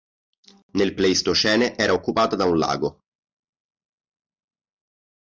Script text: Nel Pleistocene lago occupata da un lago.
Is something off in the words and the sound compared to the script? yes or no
yes